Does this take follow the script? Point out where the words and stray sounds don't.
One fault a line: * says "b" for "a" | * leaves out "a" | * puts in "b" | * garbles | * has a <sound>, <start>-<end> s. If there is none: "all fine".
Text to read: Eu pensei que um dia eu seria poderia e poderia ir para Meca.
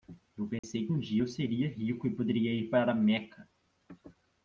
* has a dropout, 0.6-0.6 s
* says "rico" for "poderia"